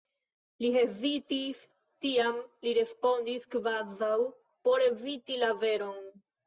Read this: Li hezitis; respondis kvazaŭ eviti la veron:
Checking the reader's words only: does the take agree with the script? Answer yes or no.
no